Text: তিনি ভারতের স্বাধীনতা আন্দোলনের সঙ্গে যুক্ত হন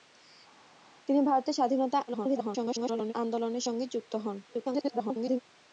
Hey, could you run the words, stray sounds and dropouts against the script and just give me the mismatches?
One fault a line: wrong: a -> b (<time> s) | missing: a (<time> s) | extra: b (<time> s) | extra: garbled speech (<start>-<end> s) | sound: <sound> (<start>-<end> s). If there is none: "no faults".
extra: garbled speech (2.1-3.1 s)
extra: garbled speech (4.4-5.4 s)